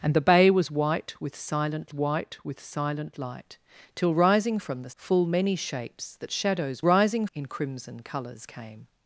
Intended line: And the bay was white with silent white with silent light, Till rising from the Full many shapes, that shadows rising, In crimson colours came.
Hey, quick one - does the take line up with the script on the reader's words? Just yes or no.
yes